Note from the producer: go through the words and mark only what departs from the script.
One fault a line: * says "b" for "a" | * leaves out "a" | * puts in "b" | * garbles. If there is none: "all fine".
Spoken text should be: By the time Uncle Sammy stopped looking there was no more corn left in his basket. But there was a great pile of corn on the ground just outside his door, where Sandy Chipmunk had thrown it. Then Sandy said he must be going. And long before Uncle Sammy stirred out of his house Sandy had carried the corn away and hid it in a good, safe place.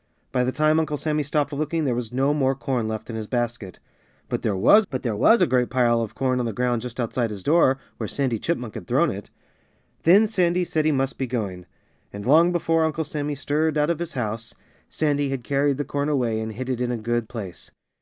* puts in "but there was"
* leaves out "safe"